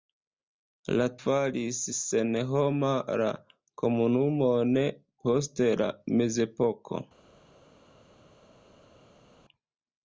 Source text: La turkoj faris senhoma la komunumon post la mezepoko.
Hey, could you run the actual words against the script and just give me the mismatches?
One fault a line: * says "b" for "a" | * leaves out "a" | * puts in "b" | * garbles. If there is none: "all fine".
* leaves out "turkoj"